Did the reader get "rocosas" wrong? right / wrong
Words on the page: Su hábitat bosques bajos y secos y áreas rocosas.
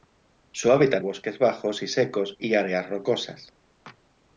right